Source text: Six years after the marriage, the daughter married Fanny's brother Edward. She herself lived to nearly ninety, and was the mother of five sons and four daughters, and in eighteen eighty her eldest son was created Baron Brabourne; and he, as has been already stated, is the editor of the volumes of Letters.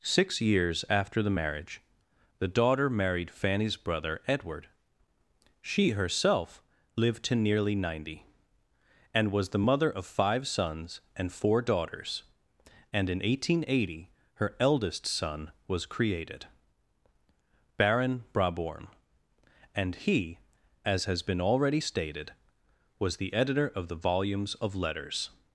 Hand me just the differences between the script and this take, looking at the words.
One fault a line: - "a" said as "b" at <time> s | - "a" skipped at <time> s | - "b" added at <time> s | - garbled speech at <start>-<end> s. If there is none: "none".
- "is" said as "was" at 23.0 s